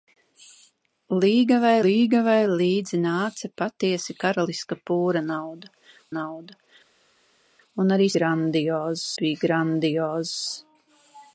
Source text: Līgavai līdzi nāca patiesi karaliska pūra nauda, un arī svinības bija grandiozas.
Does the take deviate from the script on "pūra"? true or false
false